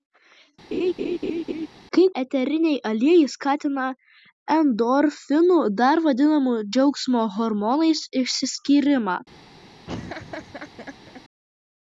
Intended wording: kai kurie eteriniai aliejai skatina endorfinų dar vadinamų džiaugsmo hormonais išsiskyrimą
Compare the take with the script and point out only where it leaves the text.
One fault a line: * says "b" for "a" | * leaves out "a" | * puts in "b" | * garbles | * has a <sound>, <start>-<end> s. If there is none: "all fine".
* has a laugh, 0.7-1.7 s
* leaves out "kurie"
* has a laugh, 9.9-11.2 s